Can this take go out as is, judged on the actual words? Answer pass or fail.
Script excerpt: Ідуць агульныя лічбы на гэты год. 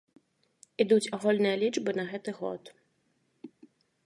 pass